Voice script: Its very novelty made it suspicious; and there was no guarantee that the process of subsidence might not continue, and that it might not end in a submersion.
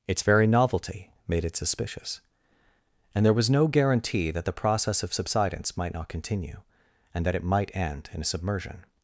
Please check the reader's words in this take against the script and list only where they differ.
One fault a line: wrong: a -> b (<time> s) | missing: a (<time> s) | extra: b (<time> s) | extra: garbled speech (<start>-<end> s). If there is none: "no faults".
missing: not (7.8 s)